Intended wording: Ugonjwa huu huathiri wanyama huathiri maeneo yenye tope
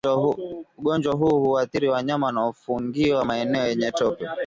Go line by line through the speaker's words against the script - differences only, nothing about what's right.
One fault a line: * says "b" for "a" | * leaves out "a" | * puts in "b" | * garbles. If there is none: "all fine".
* says "wanaofungiwa" for "huathiri"